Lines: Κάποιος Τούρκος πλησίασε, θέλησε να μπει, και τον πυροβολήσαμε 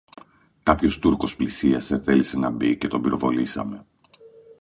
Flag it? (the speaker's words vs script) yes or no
no